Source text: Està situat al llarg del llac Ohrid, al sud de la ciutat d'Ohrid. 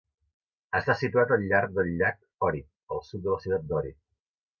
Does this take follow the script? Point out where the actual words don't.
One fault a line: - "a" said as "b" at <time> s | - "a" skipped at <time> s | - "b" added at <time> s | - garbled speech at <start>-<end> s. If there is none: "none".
none